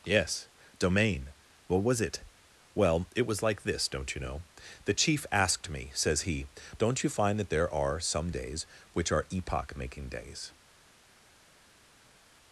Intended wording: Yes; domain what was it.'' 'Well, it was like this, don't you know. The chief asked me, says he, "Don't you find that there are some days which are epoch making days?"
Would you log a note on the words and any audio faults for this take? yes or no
no